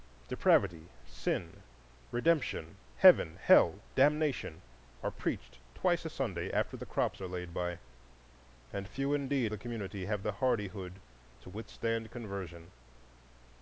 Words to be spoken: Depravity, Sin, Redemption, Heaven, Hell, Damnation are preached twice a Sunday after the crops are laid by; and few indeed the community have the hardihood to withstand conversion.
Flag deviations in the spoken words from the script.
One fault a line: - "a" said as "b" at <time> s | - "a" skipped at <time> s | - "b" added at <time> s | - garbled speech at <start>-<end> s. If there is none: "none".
none